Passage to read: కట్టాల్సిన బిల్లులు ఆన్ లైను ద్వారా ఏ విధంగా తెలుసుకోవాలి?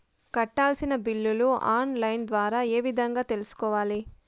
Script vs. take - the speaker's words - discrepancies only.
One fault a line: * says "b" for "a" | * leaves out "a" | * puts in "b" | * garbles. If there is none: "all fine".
all fine